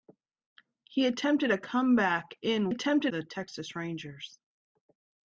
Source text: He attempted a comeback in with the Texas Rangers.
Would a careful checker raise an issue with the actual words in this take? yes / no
yes